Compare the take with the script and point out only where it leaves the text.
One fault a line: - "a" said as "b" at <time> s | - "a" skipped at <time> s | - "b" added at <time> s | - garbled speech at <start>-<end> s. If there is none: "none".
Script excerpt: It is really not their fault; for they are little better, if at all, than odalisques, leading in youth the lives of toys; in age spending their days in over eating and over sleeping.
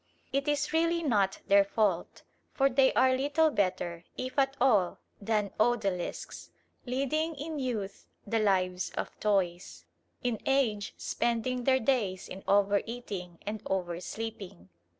none